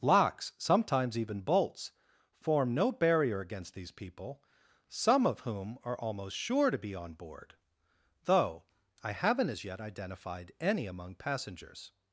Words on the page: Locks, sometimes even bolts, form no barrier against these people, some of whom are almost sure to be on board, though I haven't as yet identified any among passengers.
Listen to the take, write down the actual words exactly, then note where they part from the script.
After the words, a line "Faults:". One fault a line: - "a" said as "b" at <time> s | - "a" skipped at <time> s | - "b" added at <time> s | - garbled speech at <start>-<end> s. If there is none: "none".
Locks, sometimes even bolts, form no barrier against these people, some of whom are almost sure to be on board, though I haven't as yet identified any among passengers.
Faults:
none